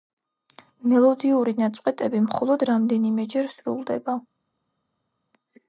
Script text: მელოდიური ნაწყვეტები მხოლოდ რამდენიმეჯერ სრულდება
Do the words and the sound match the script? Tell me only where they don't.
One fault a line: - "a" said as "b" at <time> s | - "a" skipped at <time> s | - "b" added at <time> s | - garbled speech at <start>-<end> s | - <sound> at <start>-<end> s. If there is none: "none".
none